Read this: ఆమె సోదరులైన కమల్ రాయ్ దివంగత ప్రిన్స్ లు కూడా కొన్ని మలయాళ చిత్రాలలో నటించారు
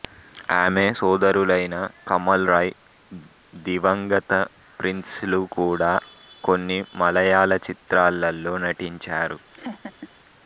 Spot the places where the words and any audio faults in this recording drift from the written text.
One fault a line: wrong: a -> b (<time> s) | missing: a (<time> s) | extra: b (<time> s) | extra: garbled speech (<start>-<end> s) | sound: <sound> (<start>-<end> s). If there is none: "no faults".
sound: laugh (9.5-10.1 s)